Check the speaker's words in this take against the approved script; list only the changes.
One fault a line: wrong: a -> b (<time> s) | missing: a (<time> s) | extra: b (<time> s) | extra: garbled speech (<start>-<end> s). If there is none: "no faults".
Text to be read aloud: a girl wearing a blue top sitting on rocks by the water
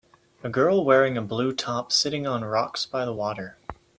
no faults